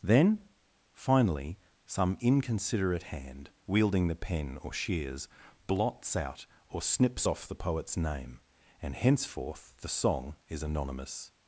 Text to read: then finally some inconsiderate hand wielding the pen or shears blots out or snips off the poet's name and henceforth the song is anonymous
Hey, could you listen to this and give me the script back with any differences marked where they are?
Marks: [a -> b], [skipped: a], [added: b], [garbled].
then finally some inconsiderate hand wielding the pen or shears blots out or snips off the poet's name and henceforth the song is anonymous